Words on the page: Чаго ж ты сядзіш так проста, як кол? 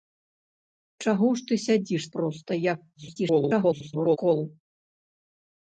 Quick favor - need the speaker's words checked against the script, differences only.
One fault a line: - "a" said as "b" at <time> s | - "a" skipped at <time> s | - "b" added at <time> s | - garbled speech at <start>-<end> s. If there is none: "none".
- "так" skipped at 2.0 s
- garbled speech at 2.9-4.2 s